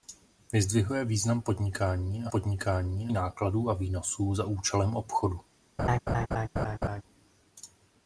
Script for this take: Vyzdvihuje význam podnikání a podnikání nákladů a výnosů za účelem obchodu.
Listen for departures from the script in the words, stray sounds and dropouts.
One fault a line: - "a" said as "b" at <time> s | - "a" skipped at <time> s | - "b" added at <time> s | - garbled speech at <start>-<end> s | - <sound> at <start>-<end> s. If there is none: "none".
- laugh at 5.8-7.0 s